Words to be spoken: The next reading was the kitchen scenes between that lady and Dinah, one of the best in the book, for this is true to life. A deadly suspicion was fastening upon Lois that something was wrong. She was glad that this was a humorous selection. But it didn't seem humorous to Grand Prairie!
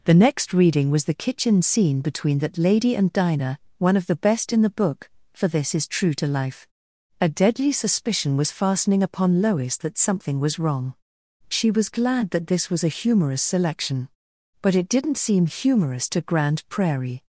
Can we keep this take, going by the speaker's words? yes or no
no